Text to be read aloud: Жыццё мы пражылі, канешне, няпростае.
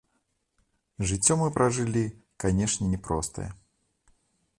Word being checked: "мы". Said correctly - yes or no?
yes